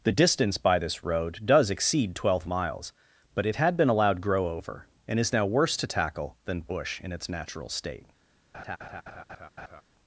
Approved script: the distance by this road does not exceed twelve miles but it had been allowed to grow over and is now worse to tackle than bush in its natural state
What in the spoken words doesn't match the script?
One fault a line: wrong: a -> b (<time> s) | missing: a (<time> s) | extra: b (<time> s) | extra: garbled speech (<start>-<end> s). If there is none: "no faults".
missing: not (1.7 s)
missing: to (4.2 s)